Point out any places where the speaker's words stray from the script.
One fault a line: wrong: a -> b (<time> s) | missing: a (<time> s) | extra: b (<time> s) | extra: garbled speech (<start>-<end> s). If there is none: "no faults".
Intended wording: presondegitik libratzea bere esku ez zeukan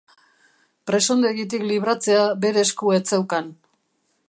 no faults